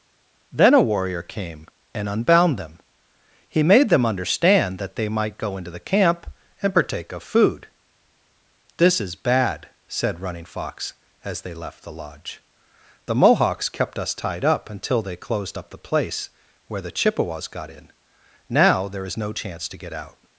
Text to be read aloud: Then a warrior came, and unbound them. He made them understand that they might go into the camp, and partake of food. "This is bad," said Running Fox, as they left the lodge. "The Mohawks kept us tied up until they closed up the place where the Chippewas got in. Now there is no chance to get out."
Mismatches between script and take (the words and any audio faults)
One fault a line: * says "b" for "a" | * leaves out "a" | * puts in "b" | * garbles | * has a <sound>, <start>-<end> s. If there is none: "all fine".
all fine